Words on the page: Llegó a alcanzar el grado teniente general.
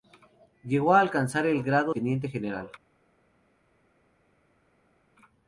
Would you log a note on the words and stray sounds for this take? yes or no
no